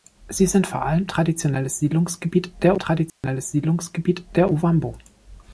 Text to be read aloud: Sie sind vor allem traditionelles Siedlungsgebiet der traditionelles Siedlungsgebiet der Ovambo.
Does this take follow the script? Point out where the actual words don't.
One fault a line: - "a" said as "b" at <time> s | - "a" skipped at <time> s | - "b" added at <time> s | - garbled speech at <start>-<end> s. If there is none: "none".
none